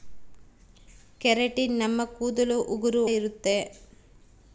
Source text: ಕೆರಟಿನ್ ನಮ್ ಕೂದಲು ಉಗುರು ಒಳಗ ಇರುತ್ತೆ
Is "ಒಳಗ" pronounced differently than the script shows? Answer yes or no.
yes